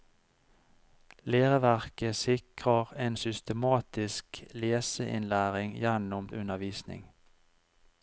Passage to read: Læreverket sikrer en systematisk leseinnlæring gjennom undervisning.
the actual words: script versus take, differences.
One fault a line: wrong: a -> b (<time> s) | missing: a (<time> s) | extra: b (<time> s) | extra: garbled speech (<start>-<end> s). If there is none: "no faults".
no faults